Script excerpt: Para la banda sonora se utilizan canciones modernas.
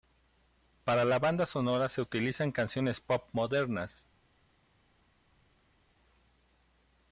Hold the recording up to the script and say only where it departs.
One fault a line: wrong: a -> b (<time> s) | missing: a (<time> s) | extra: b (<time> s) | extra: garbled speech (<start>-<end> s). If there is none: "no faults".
extra: pop (3.0 s)